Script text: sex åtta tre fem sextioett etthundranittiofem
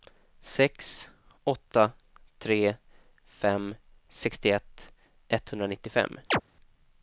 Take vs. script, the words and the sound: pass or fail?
fail